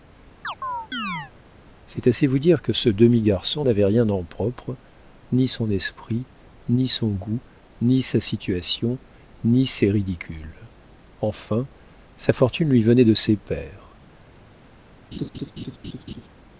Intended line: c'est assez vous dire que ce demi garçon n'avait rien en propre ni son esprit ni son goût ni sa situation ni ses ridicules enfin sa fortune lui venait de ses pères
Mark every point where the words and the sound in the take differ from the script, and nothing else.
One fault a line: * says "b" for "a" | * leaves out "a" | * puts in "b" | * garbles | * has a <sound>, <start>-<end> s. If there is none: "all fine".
* has a chirp, 0.4-1.3 s
* has a laugh, 15.1-16.3 s